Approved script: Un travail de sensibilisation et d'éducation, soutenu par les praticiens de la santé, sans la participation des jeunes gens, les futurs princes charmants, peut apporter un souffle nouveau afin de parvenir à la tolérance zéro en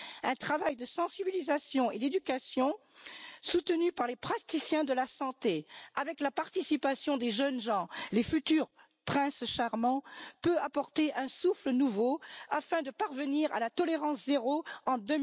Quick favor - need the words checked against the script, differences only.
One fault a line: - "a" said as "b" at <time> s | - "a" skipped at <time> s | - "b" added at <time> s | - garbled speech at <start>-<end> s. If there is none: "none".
- "sans" said as "avec" at 6.0 s